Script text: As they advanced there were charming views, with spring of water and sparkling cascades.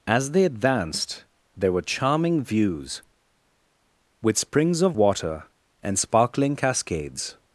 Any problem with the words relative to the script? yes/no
yes